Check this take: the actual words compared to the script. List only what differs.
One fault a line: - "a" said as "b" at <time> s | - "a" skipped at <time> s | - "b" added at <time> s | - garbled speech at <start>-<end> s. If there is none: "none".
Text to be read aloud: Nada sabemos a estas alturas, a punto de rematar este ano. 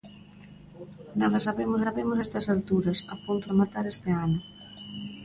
- "sabemos" added at 1.8 s
- "de" skipped at 3.5 s